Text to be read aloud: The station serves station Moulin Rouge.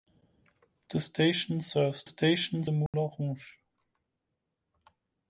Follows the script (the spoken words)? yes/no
yes